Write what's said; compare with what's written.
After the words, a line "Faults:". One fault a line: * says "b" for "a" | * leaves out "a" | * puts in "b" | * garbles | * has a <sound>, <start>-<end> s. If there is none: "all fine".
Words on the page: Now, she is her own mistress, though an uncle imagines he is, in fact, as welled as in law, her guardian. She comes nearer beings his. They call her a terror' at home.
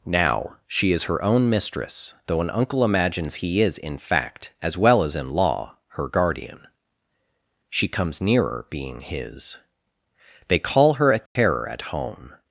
Now, she is her own mistress, though an uncle imagines he is, in fact, as well as in law, her guardian. She comes nearer being his. They call her a terror' at home.
Faults:
* says "well" for "welled"
* says "being" for "beings"
* has a dropout, 11.3-11.4 s